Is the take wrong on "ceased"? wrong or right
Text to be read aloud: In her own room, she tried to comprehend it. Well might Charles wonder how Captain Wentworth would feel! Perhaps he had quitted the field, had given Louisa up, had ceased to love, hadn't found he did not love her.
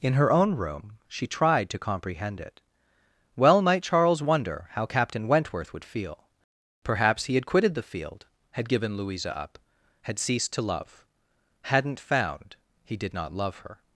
right